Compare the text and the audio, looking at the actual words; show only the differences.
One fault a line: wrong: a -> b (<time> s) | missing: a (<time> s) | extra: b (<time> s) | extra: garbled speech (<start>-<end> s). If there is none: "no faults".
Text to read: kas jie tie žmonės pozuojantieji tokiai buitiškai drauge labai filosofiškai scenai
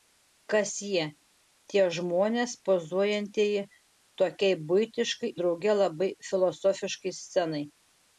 no faults